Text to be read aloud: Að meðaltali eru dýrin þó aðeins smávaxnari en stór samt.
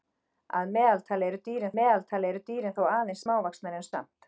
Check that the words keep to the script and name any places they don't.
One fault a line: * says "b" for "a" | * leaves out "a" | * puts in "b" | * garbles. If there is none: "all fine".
* puts in "meðaltali eru dýrin"
* leaves out "stór"